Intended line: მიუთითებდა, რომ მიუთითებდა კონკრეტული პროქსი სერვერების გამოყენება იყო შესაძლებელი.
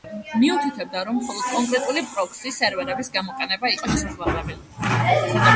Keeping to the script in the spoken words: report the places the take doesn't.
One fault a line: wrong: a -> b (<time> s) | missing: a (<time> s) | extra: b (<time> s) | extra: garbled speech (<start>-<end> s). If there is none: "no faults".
wrong: მიუთითებდა -> მხოლოდ (1.2 s)